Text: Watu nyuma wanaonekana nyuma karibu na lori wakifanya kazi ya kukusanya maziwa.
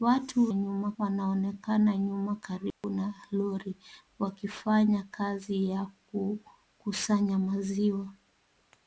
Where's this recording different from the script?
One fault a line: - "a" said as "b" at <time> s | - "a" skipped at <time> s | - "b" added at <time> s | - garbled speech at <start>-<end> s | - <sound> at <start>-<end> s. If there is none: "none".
- dropout at 2.7-2.8 s